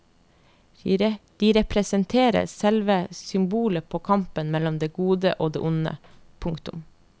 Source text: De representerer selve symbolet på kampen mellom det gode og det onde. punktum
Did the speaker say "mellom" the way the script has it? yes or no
yes